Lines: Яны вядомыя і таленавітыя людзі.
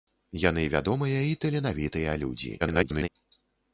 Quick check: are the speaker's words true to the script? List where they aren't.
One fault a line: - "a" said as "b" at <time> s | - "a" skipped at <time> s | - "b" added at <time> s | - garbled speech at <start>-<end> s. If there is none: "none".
- garbled speech at 2.6-3.1 s